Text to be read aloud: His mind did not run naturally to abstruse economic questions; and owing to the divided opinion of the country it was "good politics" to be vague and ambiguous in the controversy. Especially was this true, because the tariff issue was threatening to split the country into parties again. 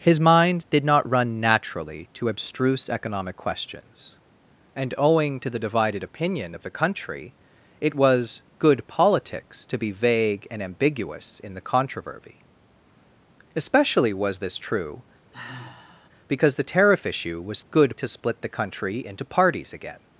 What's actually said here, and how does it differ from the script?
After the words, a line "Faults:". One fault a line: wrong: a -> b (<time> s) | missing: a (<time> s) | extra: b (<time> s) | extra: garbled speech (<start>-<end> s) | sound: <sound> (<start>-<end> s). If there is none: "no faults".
His mind did not run naturally to abstruse economic questions; and owing to the divided opinion of the country it was "good politics" to be vague and ambiguous in the controversy. Especially was this true, because the tariff issue was good to split the country into parties again.
Faults:
sound: sigh (15.3-16.1 s)
wrong: threatening -> good (17.7 s)